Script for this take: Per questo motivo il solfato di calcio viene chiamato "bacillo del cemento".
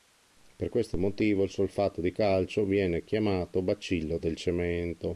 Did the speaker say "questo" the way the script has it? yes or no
yes